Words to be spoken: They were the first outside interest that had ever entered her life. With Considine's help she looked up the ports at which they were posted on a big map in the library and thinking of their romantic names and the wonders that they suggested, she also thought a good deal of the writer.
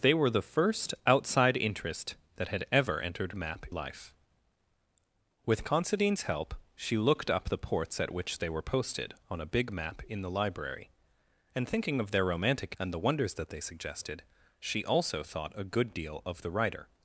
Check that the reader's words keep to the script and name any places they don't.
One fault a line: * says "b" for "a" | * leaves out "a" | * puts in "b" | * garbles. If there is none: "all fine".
* says "map" for "her"
* leaves out "names"